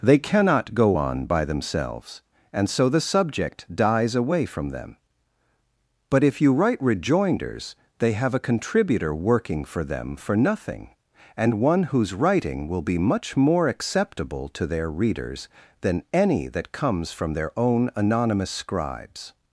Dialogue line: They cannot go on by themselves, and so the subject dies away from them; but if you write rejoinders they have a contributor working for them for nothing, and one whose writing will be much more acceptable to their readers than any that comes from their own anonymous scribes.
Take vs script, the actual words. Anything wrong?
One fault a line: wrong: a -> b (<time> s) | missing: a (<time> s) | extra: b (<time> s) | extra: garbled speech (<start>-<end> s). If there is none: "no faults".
no faults